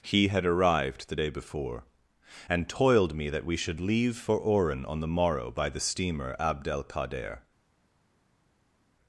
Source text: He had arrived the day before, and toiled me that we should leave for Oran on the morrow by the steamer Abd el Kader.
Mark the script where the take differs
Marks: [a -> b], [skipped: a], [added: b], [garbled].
He had arrived the day before, and toiled me that we should leave for Oran on the morrow by the steamer Abd el Kader.